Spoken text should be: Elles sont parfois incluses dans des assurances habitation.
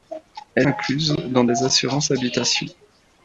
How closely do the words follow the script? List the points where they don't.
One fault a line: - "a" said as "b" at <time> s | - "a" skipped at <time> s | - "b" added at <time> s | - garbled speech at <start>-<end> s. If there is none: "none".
- "sont parfois" skipped at 0.7 s